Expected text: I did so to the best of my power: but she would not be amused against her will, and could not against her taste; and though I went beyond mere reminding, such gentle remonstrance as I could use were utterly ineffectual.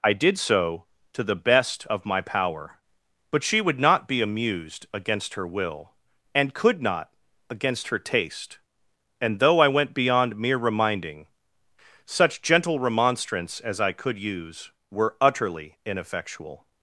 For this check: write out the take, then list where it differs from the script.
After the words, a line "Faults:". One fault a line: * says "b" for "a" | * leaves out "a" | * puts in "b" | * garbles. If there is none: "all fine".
I did so to the best of my power: but she would not be amused against her will, and could not against her taste; and though I went beyond mere reminding, such gentle remonstrance as I could use were utterly ineffectual.
Faults:
all fine